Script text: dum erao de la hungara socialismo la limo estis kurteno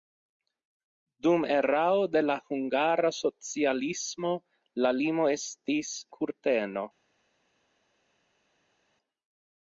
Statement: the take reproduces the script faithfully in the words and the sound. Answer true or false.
true